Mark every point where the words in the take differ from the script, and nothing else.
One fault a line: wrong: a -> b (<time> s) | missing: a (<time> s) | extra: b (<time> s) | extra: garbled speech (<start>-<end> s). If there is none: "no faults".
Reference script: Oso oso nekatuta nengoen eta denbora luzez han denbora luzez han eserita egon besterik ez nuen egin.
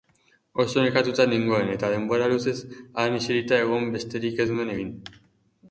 missing: oso (0.8 s)
missing: denbora luzez han (3.2 s)